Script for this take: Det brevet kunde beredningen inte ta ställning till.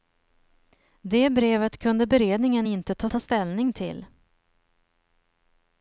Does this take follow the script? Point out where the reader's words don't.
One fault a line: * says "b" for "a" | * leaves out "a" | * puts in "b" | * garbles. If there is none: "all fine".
* puts in "ta"